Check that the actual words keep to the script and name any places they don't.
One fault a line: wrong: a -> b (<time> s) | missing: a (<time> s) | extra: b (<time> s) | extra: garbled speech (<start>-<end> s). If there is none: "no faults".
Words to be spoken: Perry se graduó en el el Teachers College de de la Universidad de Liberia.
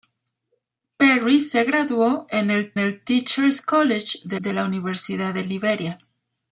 no faults